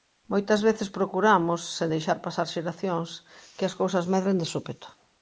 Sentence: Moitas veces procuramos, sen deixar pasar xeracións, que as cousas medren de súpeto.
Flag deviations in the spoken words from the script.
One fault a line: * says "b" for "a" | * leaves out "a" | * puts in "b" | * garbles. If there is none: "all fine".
all fine